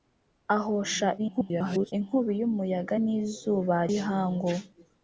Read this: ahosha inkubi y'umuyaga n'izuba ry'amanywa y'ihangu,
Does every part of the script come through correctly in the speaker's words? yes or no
no